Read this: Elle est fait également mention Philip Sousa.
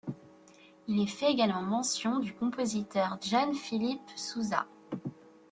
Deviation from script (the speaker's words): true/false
true